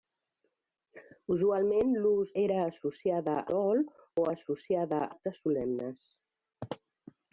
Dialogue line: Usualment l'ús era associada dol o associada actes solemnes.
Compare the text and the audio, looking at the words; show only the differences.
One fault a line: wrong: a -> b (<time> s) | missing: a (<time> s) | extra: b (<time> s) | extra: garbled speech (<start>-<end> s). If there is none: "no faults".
no faults